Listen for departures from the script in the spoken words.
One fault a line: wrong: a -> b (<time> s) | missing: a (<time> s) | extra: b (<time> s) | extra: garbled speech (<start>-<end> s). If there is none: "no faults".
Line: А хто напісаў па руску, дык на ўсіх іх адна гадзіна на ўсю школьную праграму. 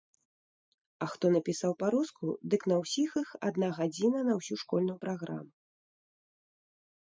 no faults